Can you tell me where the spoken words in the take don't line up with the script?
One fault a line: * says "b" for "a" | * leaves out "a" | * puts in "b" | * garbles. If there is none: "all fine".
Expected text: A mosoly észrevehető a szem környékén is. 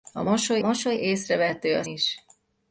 * puts in "mosoly"
* leaves out "szem környékén"